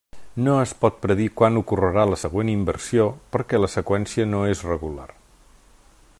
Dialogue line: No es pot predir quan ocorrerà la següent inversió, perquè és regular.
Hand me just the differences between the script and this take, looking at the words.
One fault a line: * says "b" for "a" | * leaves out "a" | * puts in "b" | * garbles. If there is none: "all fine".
* puts in "la seqüència no"